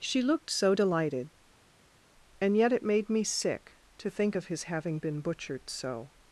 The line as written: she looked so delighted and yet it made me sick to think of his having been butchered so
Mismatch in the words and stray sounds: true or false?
false